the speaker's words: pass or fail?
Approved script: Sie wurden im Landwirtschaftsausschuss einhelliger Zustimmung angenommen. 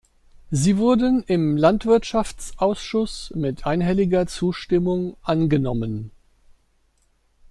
fail